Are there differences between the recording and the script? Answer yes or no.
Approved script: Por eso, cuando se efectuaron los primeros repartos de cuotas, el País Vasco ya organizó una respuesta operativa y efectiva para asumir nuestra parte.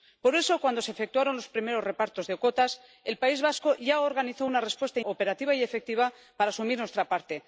no